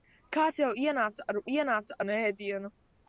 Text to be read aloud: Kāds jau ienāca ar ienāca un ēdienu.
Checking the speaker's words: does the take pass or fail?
pass